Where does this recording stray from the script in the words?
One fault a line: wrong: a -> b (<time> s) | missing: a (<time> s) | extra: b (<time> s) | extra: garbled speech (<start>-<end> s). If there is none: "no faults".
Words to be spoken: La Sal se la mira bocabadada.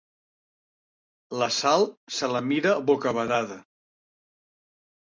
no faults